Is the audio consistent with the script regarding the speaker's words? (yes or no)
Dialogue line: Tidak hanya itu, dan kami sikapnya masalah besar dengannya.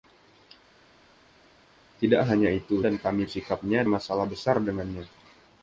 yes